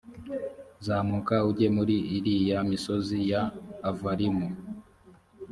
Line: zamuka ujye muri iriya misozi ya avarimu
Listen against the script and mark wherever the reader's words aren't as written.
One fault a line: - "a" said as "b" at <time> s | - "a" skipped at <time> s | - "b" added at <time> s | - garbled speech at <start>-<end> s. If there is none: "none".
none